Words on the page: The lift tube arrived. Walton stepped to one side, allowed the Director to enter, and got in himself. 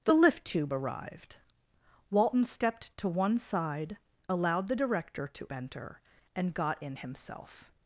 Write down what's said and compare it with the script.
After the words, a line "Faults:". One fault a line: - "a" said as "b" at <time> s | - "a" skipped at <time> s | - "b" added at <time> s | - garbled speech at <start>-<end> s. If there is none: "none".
The lift tube arrived. Walton stepped to one side, allowed the Director to enter, and got in himself.
Faults:
none